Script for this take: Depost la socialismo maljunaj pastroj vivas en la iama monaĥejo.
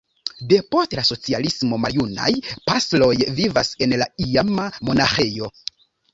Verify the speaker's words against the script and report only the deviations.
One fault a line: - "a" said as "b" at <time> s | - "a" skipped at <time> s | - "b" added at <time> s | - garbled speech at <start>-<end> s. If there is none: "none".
none